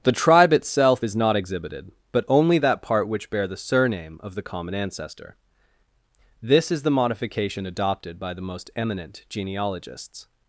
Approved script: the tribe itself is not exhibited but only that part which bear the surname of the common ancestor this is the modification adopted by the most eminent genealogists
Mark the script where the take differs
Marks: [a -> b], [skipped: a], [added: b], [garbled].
the tribe itself is not exhibited but only that part which bear the surname of the common ancestor this is the modification adopted by the most eminent genealogists